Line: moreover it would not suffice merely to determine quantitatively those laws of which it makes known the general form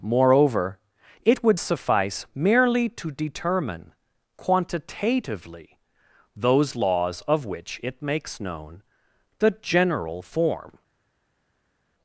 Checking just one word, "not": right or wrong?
wrong